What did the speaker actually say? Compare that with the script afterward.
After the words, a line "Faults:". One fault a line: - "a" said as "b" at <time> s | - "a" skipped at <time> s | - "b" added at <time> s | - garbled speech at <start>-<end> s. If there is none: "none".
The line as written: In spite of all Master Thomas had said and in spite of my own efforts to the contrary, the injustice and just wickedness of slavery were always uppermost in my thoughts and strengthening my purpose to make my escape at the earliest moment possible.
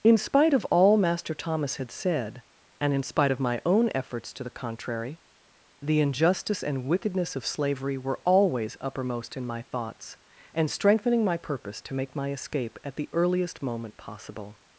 In spite of all Master Thomas had said and in spite of my own efforts to the contrary, the injustice and wickedness of slavery were always uppermost in my thoughts and strengthening my purpose to make my escape at the earliest moment possible.
Faults:
- "just" skipped at 6.9 s